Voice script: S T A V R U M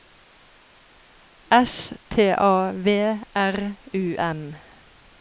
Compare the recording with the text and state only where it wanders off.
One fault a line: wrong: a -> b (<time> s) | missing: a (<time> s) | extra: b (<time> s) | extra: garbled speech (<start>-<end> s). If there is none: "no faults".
no faults